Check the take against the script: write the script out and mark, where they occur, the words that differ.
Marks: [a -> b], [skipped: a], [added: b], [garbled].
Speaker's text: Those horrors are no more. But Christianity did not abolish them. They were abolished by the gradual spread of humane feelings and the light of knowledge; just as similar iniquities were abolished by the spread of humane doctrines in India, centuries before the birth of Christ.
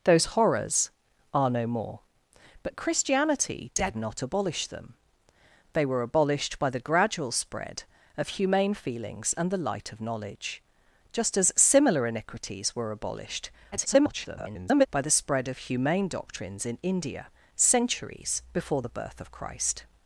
Those horrors are no more. But Christianity did not abolish them. They were abolished by the gradual spread of humane feelings and the light of knowledge; just as similar iniquities were abolished [garbled] by the spread of humane doctrines in India, centuries before the birth of Christ.